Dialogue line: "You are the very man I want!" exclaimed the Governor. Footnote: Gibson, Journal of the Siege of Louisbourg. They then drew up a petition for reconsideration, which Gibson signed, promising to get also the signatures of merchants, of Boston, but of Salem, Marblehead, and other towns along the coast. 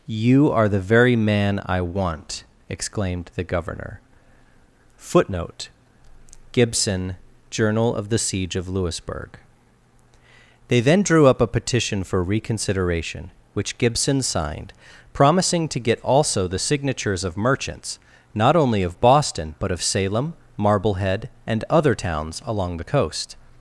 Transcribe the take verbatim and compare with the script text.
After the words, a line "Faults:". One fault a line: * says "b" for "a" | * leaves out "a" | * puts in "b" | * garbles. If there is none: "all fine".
"You are the very man I want!" exclaimed the Governor. Footnote: Gibson, Journal of the Siege of Louisbourg. They then drew up a petition for reconsideration, which Gibson signed, promising to get also the signatures of merchants, not only of Boston, but of Salem, Marblehead, and other towns along the coast.
Faults:
* puts in "not only"